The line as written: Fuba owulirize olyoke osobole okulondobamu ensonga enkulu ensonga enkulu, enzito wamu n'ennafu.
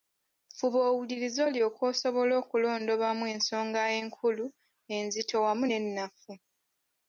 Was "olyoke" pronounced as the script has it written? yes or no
yes